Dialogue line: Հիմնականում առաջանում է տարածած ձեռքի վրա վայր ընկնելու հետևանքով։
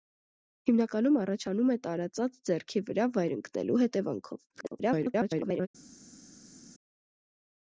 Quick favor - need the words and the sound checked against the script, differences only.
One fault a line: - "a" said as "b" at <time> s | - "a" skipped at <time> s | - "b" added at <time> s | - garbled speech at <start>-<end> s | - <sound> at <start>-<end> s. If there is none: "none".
- garbled speech at 4.5-5.7 s